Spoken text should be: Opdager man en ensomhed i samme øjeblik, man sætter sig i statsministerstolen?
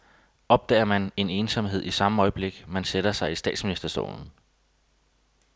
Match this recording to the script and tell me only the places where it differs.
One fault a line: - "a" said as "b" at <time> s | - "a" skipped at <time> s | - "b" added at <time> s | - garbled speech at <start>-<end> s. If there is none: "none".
none